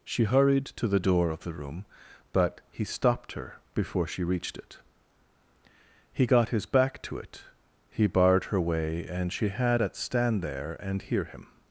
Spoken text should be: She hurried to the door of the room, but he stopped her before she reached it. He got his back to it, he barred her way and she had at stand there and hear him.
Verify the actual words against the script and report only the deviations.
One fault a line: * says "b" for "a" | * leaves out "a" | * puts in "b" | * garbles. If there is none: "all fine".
all fine